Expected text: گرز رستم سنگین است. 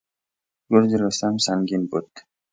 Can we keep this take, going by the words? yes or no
no